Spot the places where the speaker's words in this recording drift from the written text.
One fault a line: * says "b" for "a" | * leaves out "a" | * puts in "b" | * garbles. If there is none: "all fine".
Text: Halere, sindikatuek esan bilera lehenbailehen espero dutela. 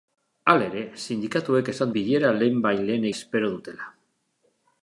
all fine